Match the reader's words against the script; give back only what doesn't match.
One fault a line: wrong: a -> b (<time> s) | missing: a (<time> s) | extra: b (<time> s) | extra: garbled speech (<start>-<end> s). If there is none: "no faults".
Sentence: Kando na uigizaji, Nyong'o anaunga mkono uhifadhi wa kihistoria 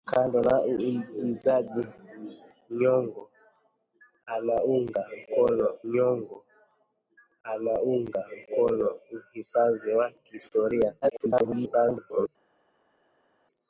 extra: Nyong'o anaunga mkono (5.9 s)
extra: garbled speech (11.0-12.3 s)